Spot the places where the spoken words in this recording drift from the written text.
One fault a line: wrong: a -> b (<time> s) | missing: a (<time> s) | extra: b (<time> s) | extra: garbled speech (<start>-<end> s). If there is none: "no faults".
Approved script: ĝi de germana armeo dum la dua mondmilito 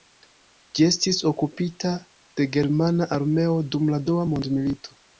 extra: estis okupita (0.9 s)